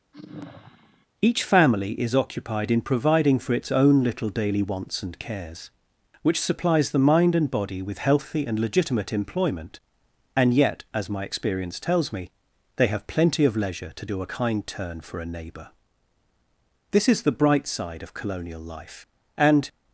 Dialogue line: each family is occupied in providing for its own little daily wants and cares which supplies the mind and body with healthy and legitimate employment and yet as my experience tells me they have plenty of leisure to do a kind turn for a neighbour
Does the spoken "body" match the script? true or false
true